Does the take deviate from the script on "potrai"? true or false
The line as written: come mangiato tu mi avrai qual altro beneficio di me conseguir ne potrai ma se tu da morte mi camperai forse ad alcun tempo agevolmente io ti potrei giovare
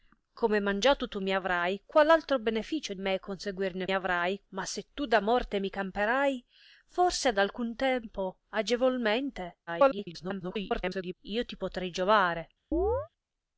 true